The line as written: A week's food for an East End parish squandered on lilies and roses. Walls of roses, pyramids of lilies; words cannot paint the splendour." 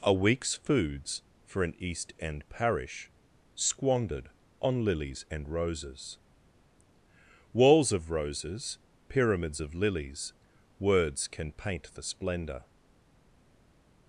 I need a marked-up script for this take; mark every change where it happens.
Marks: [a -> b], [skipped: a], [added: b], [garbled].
A week's [food -> foods] for an East End parish squandered on lilies and roses. Walls of roses, pyramids of lilies; words [cannot -> can] paint the splendour."